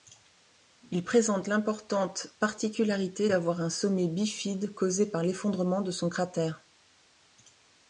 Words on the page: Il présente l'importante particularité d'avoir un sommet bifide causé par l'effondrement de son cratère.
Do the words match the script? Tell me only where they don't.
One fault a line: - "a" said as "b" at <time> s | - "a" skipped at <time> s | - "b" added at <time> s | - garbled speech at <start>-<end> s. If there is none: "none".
none